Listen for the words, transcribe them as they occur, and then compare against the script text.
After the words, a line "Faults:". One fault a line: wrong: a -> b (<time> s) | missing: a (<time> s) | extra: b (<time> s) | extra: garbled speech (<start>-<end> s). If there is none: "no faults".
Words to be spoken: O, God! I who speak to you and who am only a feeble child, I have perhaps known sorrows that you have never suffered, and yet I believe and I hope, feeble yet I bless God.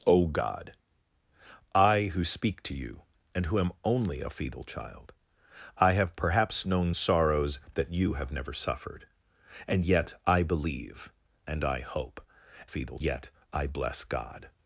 O, God! I who speak to you and who am only a feeble child, I have perhaps known sorrows that you have never suffered, and yet I believe and I hope, feeble yet I bless God.
Faults:
no faults